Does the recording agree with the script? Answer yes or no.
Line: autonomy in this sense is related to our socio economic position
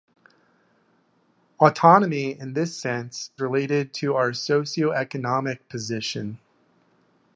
no